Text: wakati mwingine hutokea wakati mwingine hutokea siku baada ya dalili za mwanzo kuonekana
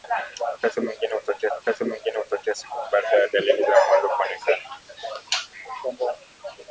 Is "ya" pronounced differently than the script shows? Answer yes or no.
no